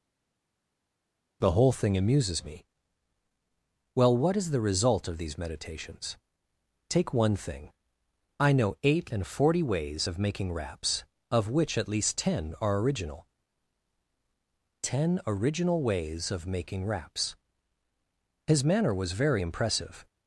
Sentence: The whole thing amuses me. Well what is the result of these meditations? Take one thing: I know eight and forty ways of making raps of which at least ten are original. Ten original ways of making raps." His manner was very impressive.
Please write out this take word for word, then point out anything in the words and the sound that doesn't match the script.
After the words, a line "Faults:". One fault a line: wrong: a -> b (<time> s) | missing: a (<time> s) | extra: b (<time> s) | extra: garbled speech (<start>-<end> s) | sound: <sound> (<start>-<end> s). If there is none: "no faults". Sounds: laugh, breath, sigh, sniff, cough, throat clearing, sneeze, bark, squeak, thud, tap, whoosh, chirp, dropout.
The whole thing amuses me. Well what is the result of these meditations? Take one thing: I know eight and forty ways of making raps of which at least ten are original. Ten original ways of making raps." His manner was very impressive.
Faults:
no faults